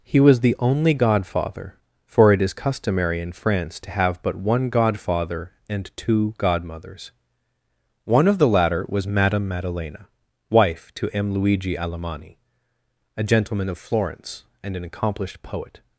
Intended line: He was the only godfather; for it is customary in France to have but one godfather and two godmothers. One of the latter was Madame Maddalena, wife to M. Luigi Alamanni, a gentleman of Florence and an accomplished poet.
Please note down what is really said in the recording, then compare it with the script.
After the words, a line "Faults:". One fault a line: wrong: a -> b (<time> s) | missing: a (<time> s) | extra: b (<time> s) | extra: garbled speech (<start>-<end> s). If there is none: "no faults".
He was the only godfather; for it is customary in France to have but one godfather and two godmothers. One of the latter was Madame Maddalena, wife to M. Luigi Alamanni, a gentleman of Florence and an accomplished poet.
Faults:
no faults